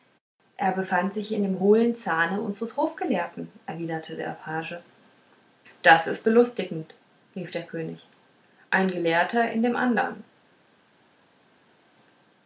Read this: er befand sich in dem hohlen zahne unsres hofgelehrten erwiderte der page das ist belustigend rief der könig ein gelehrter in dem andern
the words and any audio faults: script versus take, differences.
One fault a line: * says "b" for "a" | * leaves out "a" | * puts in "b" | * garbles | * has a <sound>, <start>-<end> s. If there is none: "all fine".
all fine